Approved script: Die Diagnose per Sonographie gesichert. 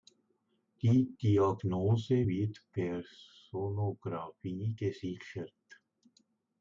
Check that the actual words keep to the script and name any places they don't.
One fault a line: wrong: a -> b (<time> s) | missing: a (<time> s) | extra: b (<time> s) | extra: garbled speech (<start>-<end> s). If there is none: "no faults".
extra: wird (2.2 s)